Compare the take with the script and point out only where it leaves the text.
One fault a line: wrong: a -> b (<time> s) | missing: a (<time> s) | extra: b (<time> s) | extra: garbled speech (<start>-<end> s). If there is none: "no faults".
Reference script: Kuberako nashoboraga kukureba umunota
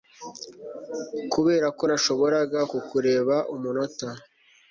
no faults